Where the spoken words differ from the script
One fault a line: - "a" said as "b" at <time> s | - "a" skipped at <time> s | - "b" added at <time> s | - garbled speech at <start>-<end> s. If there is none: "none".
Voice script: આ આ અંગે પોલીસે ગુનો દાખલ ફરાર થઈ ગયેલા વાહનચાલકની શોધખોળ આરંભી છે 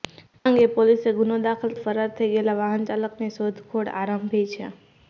none